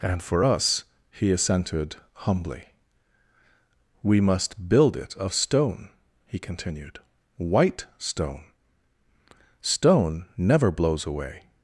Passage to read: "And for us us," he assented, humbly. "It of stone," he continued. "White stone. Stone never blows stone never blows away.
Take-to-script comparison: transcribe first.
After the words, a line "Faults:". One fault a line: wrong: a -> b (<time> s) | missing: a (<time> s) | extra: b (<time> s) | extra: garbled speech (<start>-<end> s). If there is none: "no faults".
"And for us," he assented, humbly. "We must build it of stone," he continued. "White stone. Stone never blows away.
Faults:
missing: us (0.8 s)
extra: We must build (4.0 s)
missing: stone never blows (11.1 s)